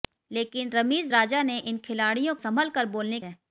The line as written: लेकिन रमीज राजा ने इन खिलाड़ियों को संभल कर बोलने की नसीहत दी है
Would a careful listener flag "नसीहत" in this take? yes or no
yes